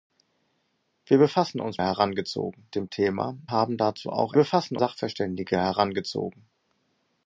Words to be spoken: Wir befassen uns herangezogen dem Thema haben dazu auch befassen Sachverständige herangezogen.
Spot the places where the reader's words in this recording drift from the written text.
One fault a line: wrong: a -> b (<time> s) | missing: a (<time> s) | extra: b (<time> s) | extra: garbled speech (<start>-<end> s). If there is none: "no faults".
no faults